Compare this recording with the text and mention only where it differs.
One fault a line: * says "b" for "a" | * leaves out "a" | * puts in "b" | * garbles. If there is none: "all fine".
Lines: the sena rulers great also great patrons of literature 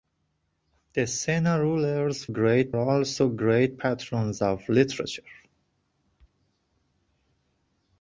all fine